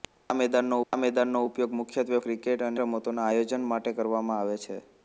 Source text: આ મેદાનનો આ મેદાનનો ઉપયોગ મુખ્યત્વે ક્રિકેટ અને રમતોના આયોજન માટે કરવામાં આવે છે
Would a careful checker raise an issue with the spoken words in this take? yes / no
no